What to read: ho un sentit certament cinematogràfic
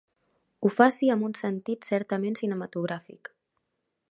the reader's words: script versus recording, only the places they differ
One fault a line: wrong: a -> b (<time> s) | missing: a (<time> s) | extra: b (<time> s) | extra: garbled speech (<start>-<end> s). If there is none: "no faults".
extra: faci amb (0.8 s)